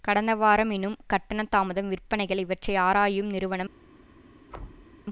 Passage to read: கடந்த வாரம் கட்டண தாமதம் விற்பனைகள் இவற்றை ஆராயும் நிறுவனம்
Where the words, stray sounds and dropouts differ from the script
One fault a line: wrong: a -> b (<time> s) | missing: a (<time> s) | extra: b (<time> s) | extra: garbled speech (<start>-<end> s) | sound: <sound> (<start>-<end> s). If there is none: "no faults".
extra: எனும் (0.7 s)
sound: thud (4.5-4.9 s)